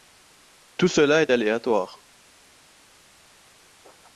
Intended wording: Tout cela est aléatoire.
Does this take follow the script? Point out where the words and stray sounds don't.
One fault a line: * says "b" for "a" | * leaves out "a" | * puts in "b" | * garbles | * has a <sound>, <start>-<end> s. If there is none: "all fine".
all fine